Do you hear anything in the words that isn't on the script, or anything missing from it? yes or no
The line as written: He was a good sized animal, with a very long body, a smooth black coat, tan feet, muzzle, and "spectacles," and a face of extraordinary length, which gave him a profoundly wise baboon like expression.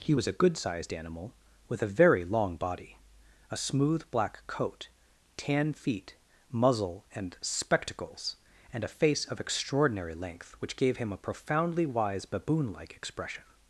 no